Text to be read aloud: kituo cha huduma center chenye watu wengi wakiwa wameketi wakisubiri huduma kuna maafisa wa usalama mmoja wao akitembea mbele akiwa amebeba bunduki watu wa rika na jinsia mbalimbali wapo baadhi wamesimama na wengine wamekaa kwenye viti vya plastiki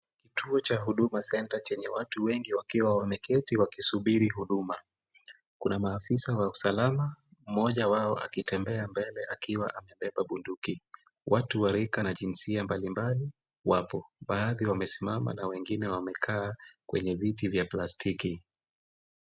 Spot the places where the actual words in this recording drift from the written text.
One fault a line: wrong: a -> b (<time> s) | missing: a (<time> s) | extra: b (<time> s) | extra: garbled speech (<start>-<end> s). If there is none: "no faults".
no faults